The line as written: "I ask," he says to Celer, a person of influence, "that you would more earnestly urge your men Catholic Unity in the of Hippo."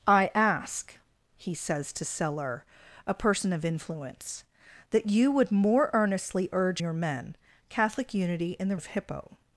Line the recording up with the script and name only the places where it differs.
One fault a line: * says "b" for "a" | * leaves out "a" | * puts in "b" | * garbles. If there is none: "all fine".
all fine